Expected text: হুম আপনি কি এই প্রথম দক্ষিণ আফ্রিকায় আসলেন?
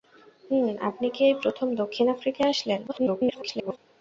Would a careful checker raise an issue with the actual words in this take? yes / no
yes